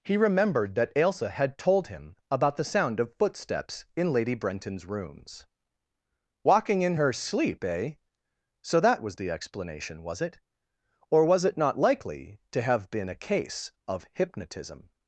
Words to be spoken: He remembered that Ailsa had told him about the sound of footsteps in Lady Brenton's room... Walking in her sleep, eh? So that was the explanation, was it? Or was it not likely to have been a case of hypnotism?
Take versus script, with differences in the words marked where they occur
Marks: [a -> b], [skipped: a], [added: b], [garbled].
He remembered that Ailsa had told him about the sound of footsteps in Lady Brenton's [room... -> rooms] Walking in her sleep, eh? So that was the explanation, was it? Or was it not likely to have been a case of hypnotism?